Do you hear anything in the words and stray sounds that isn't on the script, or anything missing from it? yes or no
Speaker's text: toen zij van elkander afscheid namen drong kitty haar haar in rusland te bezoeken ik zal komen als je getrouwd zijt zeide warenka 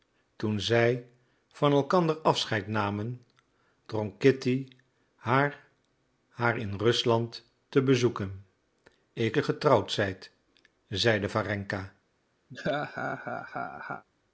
yes